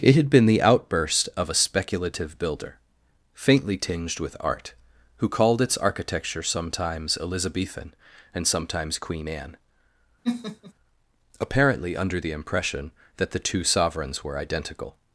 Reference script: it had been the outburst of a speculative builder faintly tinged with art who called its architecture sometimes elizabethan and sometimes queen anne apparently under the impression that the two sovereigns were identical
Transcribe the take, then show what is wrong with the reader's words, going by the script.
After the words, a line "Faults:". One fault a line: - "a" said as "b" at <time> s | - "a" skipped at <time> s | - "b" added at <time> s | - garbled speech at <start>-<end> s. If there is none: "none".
it had been the outburst of a speculative builder faintly tinged with art who called its architecture sometimes elizabethan and sometimes queen anne apparently under the impression that the two sovereigns were identical
Faults:
none